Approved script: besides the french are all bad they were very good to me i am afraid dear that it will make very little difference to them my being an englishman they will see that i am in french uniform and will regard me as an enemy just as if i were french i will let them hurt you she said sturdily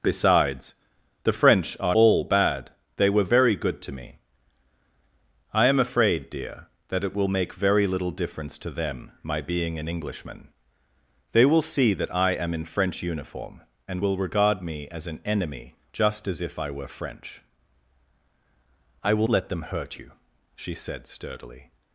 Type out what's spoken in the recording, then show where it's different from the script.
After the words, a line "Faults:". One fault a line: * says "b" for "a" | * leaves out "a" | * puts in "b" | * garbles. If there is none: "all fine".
besides the french are all bad they were very good to me i am afraid dear that it will make very little difference to them my being an englishman they will see that i am in french uniform and will regard me as an enemy just as if i were french i will let them hurt you she said sturdily
Faults:
all fine